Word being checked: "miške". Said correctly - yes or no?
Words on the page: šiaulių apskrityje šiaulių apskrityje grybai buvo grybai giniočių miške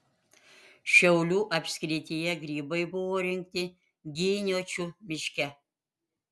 yes